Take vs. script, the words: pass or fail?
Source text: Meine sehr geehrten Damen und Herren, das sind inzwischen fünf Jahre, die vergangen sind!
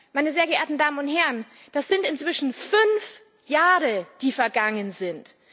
pass